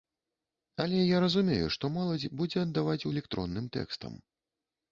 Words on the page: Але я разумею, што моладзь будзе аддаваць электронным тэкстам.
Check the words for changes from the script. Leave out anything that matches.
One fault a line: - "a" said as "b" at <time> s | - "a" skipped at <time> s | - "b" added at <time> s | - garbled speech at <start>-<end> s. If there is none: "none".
none